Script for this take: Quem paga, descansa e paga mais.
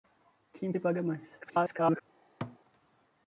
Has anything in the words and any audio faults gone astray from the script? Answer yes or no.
yes